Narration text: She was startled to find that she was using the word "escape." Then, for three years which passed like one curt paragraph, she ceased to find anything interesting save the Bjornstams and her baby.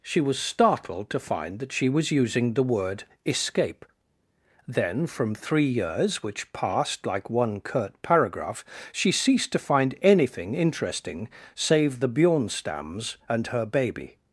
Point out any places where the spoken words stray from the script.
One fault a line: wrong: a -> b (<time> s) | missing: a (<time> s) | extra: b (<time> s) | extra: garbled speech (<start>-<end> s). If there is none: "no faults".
wrong: for -> from (5.0 s)